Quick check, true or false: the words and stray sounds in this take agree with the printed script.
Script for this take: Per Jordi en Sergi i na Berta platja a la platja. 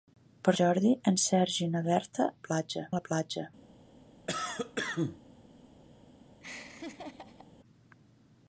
false